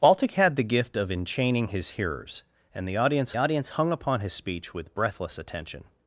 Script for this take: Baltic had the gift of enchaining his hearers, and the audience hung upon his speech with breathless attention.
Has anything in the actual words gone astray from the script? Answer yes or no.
yes